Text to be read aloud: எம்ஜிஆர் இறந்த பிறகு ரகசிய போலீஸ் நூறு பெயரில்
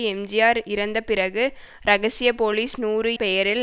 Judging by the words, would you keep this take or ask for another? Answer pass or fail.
pass